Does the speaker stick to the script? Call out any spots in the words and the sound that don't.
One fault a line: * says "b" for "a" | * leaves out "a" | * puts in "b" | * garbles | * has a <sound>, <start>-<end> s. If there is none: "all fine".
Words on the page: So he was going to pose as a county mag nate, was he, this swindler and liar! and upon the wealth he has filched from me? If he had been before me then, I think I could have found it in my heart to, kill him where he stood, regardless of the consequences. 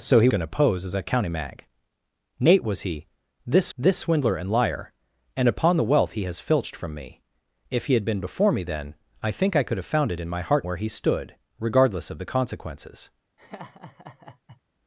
* leaves out "was"
* puts in "this"
* leaves out "to kill him"
* has a laugh, 13.4-14.6 s